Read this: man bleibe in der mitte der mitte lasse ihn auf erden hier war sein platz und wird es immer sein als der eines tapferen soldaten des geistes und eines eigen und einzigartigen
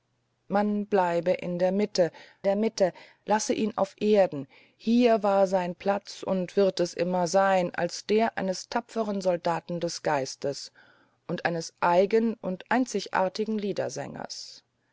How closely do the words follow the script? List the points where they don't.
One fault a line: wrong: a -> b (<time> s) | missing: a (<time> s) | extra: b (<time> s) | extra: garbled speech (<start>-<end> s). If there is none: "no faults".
no faults